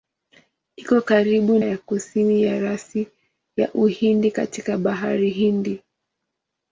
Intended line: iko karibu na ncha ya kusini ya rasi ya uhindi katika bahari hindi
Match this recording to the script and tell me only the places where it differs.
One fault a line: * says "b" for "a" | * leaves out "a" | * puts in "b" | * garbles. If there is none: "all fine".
* leaves out "na ncha"